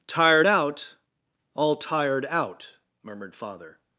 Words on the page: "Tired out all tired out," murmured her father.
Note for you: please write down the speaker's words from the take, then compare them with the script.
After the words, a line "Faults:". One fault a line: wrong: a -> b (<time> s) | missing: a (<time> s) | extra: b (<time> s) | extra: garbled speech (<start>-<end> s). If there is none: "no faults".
"Tired out all tired out," murmured father.
Faults:
missing: her (3.4 s)